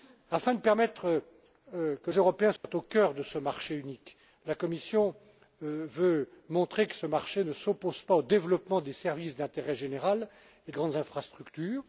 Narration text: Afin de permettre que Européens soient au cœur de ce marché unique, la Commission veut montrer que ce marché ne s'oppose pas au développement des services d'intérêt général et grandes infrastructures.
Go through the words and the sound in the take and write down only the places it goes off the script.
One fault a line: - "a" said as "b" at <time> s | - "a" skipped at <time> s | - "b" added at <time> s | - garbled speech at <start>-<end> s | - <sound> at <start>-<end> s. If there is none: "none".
- dropout at 2.6-2.6 s